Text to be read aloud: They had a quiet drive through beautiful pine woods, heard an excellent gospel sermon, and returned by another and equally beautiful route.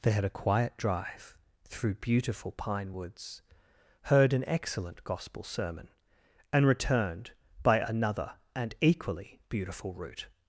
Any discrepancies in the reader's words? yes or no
no